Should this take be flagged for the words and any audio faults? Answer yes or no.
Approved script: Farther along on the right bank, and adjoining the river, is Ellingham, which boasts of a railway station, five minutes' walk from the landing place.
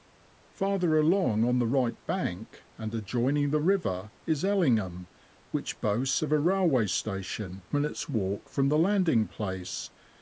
yes